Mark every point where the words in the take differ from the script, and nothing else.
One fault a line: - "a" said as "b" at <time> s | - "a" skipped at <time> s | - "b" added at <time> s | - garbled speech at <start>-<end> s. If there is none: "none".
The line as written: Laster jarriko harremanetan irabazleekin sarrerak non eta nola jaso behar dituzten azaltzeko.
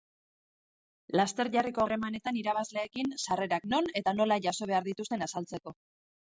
none